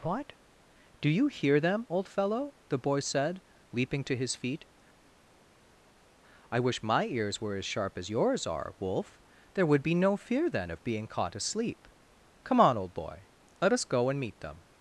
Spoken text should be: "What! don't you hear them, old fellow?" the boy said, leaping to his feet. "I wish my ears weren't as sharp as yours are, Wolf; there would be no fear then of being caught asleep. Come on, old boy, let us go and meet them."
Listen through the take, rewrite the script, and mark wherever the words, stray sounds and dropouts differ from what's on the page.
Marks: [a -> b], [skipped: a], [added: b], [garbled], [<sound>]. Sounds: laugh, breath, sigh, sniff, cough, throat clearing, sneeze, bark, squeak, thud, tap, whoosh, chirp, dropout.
"What! [don't -> do] you hear them, old fellow?" the boy said, leaping to his feet. "I wish my ears [weren't -> were] as sharp as yours are, Wolf; there would be no fear then of being caught asleep. Come on, old boy, let us go and meet them."